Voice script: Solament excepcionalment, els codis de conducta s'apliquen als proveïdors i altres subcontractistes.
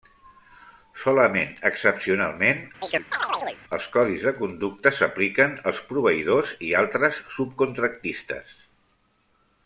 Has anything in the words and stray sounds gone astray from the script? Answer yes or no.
yes